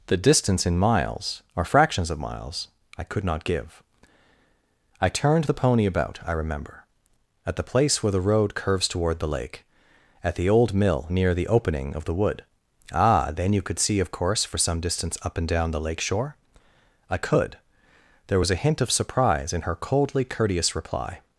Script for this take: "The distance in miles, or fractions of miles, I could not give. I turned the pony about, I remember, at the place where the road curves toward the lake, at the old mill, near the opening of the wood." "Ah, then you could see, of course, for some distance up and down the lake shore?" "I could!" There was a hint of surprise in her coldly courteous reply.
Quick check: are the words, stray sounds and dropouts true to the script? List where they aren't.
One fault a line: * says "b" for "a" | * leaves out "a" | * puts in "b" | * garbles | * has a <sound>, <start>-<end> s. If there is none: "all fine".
all fine